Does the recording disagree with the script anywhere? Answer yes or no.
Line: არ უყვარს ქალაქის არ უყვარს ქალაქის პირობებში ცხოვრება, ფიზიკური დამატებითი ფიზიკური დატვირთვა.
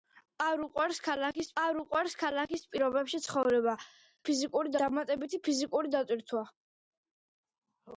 no